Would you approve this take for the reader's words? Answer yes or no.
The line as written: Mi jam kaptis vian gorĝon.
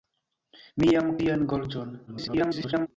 no